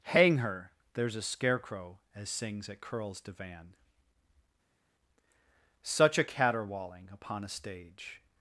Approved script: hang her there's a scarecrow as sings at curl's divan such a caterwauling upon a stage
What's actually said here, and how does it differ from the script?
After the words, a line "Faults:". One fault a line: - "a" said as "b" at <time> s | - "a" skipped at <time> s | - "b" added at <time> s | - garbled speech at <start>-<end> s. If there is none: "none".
hang her there's a scarecrow as sings at curl's divan such a caterwauling upon a stage
Faults:
none